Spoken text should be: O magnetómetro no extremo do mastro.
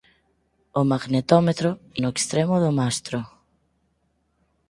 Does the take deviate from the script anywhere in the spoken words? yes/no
no